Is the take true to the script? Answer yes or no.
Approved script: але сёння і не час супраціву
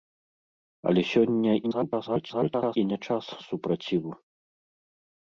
no